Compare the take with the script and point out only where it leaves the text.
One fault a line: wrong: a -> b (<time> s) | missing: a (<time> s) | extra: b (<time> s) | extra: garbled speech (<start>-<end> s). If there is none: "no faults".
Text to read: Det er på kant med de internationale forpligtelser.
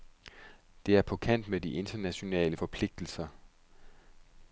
no faults